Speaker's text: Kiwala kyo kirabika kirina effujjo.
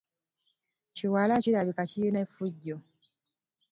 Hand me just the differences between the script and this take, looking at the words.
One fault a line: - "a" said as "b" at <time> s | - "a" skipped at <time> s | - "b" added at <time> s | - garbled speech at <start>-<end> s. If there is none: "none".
- "kyo" skipped at 1.4 s